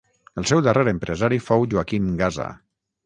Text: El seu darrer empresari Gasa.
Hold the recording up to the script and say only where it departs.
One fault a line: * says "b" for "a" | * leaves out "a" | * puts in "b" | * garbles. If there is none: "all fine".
* puts in "fou Joaquim"